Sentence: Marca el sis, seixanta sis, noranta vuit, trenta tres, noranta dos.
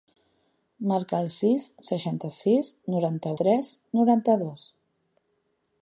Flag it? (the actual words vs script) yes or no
yes